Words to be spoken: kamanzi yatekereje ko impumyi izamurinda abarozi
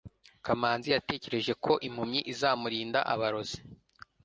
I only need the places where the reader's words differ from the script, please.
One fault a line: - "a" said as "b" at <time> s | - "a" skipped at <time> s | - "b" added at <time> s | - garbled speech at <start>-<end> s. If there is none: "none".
none